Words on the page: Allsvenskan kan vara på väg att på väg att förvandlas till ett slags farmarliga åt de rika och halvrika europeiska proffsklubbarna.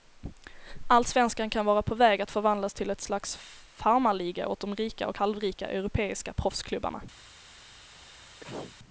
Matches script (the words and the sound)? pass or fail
fail